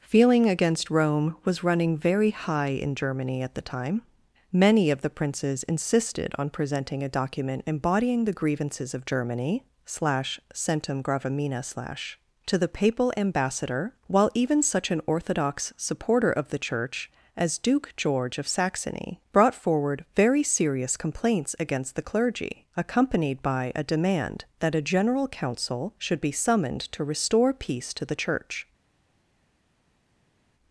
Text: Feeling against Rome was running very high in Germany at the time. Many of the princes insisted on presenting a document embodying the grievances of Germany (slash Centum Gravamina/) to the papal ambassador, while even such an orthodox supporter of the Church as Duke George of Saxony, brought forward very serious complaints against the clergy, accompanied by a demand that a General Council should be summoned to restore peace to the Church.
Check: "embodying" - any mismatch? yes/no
no